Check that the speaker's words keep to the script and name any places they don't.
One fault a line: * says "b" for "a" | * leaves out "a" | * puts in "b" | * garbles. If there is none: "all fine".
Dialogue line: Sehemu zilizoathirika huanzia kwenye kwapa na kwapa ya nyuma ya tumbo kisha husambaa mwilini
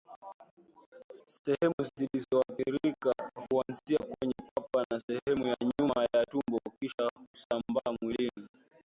* says "sehemu" for "kwapa"